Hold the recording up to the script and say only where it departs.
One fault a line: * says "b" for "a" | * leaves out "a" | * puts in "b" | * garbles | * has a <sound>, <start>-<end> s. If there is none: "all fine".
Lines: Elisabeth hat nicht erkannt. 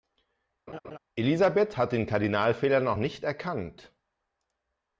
* has a laugh, 0.7-1.0 s
* puts in "den Kardinalfehler noch"